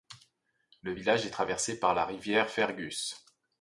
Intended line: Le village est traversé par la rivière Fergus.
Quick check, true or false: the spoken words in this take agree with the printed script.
true